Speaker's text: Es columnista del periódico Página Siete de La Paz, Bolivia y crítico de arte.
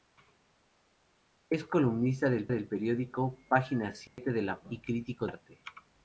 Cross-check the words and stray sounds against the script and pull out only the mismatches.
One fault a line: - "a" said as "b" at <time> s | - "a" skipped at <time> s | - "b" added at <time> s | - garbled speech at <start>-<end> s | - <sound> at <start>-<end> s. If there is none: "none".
- "del" added at 2.5 s
- dropout at 4.1-4.2 s
- "Paz Bolivia" skipped at 4.6 s
- "de" skipped at 5.3 s